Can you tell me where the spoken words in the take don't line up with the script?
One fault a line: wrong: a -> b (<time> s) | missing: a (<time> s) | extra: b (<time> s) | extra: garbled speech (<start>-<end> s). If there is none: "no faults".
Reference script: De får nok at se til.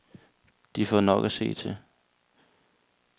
no faults